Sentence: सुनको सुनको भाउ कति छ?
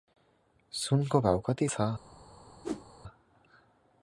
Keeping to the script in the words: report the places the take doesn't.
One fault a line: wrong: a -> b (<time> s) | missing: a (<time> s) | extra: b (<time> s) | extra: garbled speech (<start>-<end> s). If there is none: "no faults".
missing: सुनको (1.2 s)